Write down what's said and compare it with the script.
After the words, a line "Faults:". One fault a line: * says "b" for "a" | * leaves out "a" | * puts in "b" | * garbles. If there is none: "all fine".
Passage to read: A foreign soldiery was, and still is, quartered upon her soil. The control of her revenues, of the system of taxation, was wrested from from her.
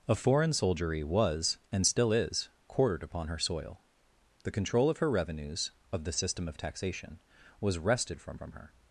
A foreign soldiery was, and still is, quartered upon her soil. The control of her revenues, of the system of taxation, was wrested from from her.
Faults:
all fine